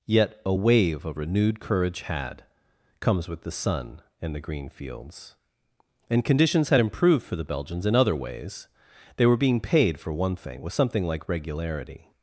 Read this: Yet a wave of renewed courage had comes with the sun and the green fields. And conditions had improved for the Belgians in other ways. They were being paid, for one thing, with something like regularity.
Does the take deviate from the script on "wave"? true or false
false